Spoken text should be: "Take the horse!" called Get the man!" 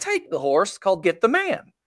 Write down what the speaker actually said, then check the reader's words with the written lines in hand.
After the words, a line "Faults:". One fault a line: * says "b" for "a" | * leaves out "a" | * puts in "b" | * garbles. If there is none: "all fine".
"Take the horse!" called Get the man!"
Faults:
all fine